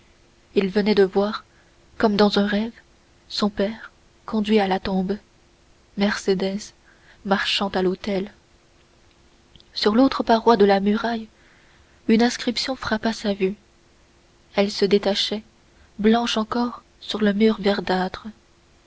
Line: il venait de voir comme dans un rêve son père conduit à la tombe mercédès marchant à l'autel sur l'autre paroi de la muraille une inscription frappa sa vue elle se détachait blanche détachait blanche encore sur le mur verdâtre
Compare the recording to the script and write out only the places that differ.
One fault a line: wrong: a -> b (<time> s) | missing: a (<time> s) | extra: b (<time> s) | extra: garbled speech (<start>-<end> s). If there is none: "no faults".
missing: détachait blanche (16.4 s)